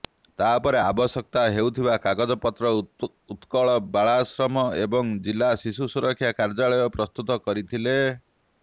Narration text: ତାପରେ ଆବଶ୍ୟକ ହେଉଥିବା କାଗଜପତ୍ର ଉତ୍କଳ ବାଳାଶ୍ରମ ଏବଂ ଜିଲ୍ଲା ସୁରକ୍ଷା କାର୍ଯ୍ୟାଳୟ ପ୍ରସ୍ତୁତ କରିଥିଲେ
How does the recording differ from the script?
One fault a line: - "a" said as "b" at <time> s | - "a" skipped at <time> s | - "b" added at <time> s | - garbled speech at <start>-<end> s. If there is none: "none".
- "ଶିଶୁ" added at 5.6 s